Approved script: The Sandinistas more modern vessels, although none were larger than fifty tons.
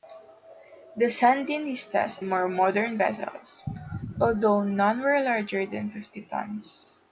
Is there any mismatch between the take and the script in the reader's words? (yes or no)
no